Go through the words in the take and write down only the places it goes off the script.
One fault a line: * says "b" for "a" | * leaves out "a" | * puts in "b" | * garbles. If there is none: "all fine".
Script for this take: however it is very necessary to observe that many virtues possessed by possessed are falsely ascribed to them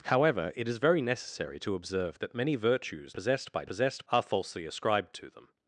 all fine